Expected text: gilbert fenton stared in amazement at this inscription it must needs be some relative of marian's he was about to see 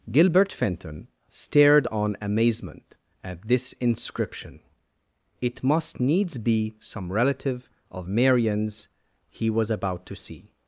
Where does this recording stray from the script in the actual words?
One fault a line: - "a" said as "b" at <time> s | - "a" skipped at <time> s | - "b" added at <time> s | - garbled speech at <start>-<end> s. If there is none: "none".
- "in" said as "on" at 1.9 s